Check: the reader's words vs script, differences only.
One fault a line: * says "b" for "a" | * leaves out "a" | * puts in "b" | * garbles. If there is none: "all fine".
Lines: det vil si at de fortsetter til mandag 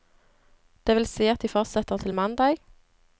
all fine